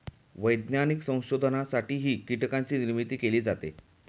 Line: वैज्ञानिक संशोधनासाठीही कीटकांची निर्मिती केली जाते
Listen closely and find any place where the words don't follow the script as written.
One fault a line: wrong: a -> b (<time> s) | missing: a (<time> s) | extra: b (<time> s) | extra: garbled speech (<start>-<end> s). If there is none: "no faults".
no faults